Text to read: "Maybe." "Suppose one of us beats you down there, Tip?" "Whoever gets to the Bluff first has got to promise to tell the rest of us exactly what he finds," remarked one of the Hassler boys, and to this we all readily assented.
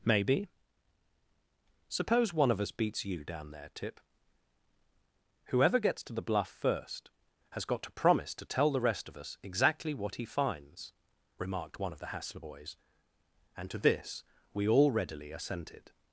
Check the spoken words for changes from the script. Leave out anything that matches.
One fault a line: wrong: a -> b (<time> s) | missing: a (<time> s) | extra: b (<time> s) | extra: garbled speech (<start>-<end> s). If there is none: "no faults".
no faults